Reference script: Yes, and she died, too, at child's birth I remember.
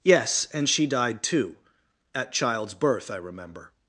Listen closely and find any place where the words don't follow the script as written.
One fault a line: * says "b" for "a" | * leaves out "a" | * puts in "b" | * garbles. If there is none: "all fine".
all fine